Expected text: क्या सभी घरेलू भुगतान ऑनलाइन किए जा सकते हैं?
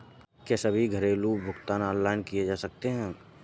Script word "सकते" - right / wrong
right